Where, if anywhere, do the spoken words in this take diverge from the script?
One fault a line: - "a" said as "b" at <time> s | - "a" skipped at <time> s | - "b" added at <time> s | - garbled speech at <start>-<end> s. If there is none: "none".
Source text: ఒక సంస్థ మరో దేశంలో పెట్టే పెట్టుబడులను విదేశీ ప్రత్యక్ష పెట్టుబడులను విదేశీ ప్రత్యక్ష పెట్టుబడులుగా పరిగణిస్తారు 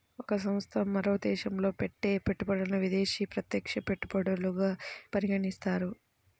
- "పెట్టుబడులను విదేశీ ప్రత్యక్ష" skipped at 3.8 s